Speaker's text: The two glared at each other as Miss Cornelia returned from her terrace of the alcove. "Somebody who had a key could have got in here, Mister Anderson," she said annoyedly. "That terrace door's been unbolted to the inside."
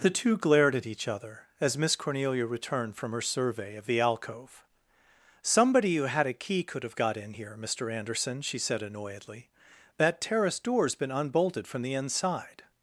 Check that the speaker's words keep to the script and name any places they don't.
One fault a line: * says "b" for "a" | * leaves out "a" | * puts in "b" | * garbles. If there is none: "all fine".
* says "survey" for "terrace"
* says "from" for "to"